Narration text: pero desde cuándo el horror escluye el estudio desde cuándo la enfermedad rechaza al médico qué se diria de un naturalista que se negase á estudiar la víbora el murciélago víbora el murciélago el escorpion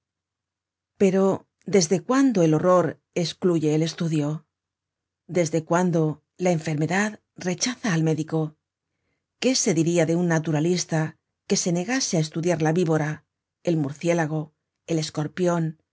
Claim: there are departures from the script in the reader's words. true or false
true